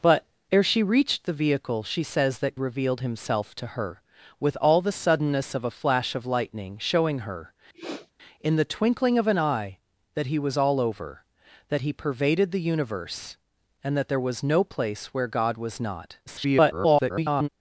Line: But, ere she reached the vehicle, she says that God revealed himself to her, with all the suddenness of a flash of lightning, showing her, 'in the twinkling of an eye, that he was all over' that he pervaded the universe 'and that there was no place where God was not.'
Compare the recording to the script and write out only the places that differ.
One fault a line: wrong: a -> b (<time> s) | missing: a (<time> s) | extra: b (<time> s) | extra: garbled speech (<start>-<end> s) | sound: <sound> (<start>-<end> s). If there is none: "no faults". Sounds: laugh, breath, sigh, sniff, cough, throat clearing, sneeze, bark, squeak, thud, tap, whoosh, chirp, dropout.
missing: God (2.6 s)
sound: sniff (7.7-8.1 s)
extra: garbled speech (16.3-17.5 s)